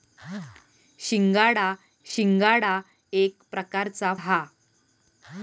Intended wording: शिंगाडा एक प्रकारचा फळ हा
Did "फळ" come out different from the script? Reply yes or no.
yes